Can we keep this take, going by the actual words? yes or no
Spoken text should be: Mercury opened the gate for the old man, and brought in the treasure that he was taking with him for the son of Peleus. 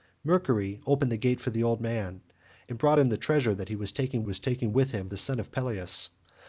no